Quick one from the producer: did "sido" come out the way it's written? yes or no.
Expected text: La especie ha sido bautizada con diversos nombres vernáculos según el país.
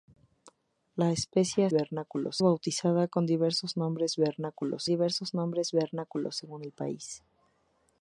no